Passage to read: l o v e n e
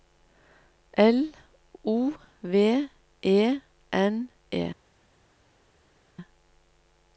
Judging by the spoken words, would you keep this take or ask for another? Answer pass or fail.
pass